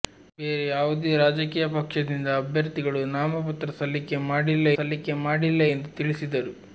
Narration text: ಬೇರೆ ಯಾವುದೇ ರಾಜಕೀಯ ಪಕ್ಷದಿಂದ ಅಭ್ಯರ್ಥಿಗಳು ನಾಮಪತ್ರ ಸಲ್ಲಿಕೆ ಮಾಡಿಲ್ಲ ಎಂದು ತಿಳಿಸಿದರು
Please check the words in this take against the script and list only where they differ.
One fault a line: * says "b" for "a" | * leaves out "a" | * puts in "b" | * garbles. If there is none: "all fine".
* puts in "ಸಲ್ಲಿಕೆ ಮಾಡಿಲ್ಲ"